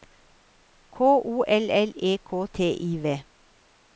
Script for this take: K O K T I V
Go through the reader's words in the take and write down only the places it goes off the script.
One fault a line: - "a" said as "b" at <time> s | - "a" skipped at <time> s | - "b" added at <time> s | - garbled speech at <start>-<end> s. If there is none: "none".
- "L L E" added at 1.5 s